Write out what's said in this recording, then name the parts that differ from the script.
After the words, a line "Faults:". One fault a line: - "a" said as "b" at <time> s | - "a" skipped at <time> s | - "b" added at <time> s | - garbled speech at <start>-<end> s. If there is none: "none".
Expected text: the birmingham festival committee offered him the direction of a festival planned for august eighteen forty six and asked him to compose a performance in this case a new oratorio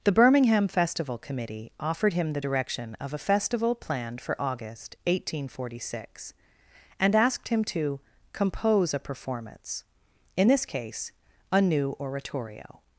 the birmingham festival committee offered him the direction of a festival planned for august eighteen forty six and asked him to compose a performance in this case a new oratorio
Faults:
none